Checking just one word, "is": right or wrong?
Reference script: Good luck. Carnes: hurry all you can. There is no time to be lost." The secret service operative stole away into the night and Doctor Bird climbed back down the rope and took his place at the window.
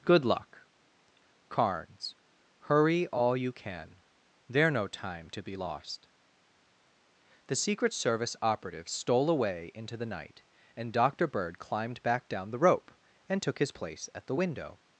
wrong